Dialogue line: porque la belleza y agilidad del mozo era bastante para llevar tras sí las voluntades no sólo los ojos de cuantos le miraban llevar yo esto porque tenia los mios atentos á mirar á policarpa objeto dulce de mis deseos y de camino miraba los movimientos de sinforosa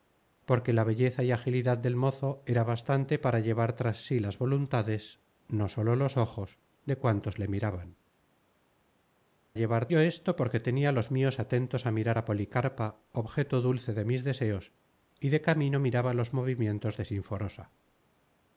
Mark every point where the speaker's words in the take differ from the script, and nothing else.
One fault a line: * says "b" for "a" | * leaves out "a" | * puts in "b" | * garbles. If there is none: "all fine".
all fine